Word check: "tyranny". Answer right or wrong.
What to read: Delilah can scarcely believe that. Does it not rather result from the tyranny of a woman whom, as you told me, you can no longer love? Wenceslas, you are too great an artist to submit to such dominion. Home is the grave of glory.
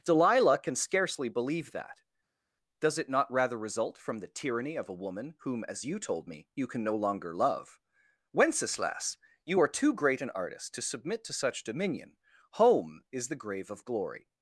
right